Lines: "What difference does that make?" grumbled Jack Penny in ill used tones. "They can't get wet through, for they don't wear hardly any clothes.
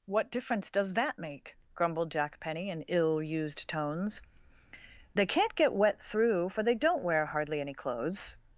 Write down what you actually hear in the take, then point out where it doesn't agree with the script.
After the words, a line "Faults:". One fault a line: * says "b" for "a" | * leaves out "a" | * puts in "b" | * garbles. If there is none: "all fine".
"What difference does that make?" grumbled Jack Penny in ill used tones. "They can't get wet through, for they don't wear hardly any clothes.
Faults:
all fine